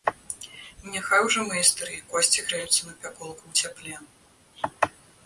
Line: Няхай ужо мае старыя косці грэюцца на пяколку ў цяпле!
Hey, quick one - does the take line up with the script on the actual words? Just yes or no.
yes